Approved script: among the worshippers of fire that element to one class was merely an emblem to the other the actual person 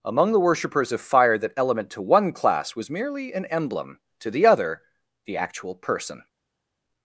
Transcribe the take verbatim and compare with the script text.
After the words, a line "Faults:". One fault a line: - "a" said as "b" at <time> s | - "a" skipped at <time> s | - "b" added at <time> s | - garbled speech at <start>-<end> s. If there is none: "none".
among the worshippers of fire that element to one class was merely an emblem to the other the actual person
Faults:
none